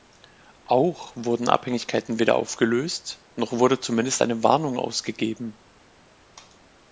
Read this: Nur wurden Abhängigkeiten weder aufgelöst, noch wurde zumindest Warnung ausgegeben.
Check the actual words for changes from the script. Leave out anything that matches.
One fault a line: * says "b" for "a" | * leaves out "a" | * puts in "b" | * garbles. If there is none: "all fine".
* says "Auch" for "Nur"
* puts in "eine"